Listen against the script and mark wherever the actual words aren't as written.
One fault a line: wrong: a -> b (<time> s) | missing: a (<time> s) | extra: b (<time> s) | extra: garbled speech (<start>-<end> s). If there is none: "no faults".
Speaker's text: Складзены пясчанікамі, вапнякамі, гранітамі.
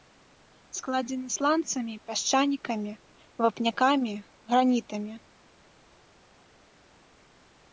extra: сланцамі (1.3 s)